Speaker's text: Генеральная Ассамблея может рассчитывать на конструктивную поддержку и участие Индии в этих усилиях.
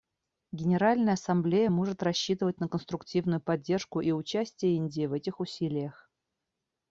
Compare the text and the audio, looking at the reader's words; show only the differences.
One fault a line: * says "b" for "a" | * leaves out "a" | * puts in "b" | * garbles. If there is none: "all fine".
all fine